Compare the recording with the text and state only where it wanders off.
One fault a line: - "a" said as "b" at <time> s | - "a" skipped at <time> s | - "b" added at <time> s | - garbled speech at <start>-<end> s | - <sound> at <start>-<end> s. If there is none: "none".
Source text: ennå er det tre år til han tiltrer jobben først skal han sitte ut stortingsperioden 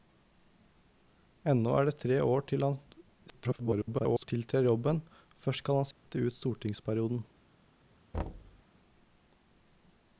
- garbled speech at 3.3-4.3 s
- dropout at 5.9-6.1 s
- thud at 8.1-8.6 s